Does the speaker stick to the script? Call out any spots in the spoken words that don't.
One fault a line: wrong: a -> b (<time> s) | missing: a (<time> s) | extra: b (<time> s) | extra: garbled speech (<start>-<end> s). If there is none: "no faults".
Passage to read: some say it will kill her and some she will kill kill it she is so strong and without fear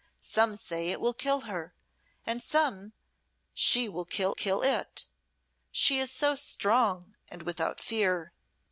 no faults